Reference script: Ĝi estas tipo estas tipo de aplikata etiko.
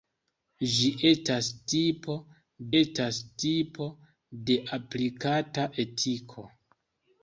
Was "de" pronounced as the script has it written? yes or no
yes